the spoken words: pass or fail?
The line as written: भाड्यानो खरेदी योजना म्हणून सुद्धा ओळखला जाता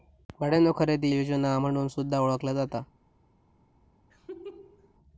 pass